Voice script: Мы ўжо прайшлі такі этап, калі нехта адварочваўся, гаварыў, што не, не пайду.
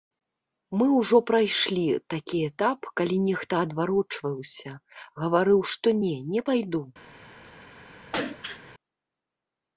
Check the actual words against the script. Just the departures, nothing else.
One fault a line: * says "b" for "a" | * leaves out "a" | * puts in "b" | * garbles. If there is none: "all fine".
all fine